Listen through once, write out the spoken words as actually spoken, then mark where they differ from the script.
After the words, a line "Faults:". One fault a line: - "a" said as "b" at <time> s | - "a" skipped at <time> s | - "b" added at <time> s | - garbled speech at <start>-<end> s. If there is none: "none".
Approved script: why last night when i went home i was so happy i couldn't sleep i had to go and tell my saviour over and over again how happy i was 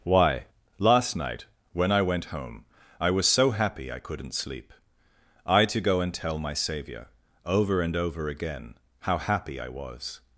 why last night when i went home i was so happy i couldn't sleep i to go and tell my saviour over and over again how happy i was
Faults:
- "had" skipped at 5.7 s